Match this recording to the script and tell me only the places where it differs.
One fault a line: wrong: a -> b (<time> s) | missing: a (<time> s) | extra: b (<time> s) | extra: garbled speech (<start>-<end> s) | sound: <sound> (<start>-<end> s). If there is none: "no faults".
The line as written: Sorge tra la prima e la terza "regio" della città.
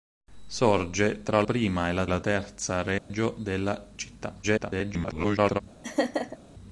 missing: la (1.4 s)
extra: la (2.1 s)
sound: dropout (3.0-3.1 s)
extra: garbled speech (4.4-5.6 s)
sound: laugh (5.8-6.4 s)